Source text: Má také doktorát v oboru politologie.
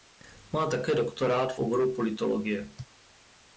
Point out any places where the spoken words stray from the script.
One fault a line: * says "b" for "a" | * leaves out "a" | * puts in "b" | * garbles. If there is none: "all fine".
all fine